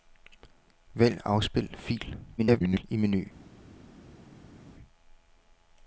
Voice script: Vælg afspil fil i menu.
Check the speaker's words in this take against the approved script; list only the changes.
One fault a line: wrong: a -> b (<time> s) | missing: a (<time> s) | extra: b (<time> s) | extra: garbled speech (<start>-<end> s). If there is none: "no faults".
extra: garbled speech (2.4-2.8 s)